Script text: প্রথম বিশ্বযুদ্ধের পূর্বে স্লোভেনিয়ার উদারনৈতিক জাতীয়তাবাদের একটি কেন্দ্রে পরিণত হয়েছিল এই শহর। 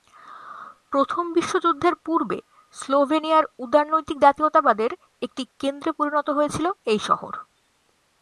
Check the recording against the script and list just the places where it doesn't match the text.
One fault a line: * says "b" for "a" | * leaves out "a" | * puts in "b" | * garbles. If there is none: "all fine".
all fine